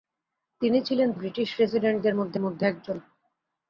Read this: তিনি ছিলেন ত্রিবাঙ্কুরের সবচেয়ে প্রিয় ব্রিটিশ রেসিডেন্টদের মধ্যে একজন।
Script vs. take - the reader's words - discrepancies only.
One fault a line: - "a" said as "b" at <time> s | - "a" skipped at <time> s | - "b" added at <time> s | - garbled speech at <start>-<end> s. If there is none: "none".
- "ত্রিবাঙ্কুরের সবচেয়ে প্রিয়" skipped at 1.1 s
- "মধ্যে" added at 2.4 s